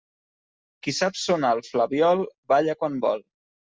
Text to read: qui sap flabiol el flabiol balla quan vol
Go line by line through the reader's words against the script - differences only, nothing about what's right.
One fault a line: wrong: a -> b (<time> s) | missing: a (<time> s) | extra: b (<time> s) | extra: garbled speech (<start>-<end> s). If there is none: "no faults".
wrong: flabiol -> sonar (1.2 s)